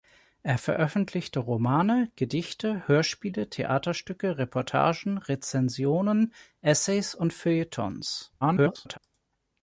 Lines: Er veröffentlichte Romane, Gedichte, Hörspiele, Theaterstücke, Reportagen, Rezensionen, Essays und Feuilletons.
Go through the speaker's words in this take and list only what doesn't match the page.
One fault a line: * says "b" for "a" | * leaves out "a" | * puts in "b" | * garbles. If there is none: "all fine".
* garbles